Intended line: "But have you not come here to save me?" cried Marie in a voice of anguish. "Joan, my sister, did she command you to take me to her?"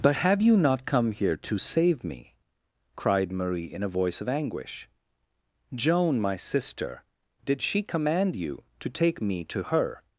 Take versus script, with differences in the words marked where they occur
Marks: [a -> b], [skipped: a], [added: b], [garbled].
"But have you not come here to save me?" cried Marie in a voice of anguish. "Joan, my sister, did she command you to take me to her?"